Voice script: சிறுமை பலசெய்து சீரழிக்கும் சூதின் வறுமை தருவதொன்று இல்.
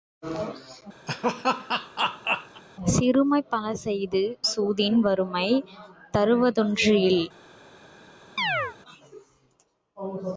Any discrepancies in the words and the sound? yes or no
yes